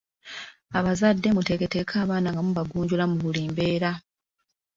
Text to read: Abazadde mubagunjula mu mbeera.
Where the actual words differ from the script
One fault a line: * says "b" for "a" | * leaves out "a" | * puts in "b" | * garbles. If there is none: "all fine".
* puts in "muteeketeeke abaana nga"
* puts in "buli"